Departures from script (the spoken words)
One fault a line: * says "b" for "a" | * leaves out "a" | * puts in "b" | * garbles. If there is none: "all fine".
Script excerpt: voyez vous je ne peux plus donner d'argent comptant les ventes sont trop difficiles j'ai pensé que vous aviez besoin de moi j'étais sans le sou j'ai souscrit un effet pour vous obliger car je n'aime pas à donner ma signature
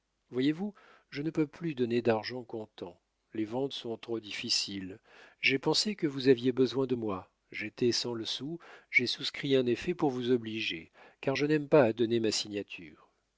all fine